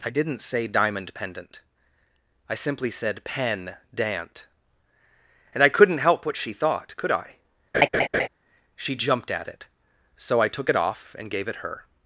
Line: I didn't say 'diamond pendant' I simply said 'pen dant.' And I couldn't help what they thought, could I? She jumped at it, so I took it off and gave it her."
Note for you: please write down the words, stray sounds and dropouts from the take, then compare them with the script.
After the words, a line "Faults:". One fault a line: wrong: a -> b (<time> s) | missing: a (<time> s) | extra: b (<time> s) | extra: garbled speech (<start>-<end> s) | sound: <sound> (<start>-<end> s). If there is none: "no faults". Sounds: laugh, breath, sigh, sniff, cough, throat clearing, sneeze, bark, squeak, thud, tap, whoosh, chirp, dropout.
I didn't say 'diamond pendant' I simply said 'pen dant.' And I couldn't help what she thought, could I? She jumped at it, so I took it off and gave it her."
Faults:
wrong: they -> she (6.4 s)
sound: laugh (7.7-8.3 s)